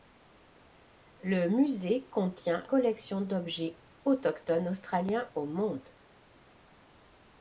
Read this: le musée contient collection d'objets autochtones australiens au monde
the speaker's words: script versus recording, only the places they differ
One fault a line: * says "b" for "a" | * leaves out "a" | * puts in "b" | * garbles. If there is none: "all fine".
all fine